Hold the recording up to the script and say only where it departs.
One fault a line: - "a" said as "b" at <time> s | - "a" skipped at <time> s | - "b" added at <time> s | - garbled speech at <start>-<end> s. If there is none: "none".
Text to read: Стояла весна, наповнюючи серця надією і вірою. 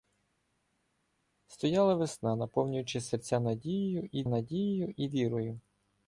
- "надією і" added at 4.3 s